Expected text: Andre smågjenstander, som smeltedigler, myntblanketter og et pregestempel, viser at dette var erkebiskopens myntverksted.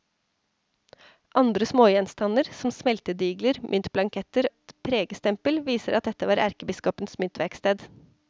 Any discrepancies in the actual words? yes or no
yes